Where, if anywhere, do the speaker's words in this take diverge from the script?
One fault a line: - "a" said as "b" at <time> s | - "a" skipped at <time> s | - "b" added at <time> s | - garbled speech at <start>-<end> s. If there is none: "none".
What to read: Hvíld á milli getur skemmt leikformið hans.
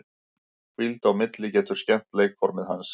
none